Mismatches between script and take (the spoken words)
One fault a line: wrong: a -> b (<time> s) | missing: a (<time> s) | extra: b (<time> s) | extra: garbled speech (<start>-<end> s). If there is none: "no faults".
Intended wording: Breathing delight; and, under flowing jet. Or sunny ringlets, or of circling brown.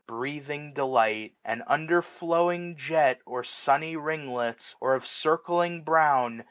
no faults